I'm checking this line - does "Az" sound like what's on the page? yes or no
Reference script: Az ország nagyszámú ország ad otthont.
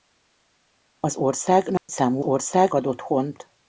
yes